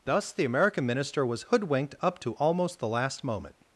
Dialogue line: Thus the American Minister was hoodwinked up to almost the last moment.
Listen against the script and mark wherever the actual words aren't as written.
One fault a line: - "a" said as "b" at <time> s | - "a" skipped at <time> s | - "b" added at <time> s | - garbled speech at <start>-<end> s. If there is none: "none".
none